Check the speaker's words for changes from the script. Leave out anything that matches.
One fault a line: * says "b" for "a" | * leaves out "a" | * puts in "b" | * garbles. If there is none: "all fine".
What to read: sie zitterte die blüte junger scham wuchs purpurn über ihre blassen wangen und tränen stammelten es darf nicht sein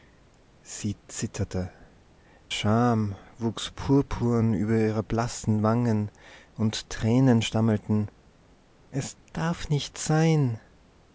* leaves out "die blüte junger"